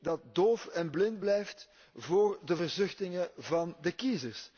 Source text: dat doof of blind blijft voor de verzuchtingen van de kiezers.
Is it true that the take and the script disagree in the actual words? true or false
true